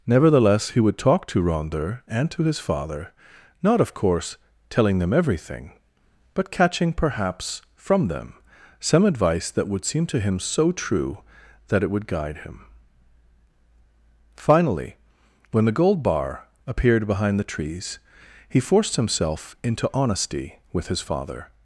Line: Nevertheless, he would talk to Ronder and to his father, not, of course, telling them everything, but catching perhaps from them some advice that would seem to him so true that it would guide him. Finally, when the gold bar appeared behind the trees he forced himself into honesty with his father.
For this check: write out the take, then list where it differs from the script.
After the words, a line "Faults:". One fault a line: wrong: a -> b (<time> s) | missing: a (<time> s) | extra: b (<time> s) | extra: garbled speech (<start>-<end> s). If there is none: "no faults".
Nevertheless, he would talk to Ronder and to his father, not, of course, telling them everything, but catching perhaps from them some advice that would seem to him so true that it would guide him. Finally, when the gold bar appeared behind the trees he forced himself into honesty with his father.
Faults:
no faults